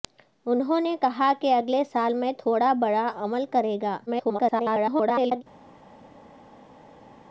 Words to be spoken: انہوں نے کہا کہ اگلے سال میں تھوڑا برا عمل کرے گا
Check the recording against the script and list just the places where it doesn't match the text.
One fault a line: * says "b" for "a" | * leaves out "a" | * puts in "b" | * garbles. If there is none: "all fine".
* garbles